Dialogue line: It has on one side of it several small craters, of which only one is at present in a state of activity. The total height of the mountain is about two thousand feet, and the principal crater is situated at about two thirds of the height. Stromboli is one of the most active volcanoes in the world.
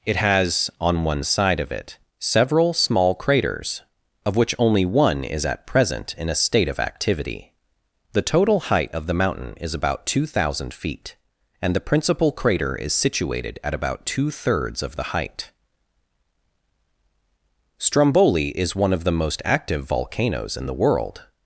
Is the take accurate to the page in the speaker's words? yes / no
yes